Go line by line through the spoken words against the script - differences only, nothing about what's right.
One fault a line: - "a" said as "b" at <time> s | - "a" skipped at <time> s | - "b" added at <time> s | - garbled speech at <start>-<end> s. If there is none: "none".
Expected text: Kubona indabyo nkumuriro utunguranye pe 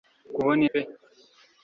- "indabyo nkumuriro utunguranye" skipped at 0.6 s